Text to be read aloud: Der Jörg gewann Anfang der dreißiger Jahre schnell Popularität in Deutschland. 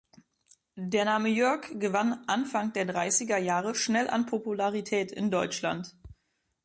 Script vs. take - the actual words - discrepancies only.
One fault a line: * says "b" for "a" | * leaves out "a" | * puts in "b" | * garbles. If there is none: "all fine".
* puts in "Name"
* puts in "an"